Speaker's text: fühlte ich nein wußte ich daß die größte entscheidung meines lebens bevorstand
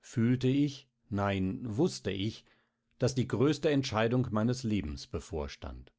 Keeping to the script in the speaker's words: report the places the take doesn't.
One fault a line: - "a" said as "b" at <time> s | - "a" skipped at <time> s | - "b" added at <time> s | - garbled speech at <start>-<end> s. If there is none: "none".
none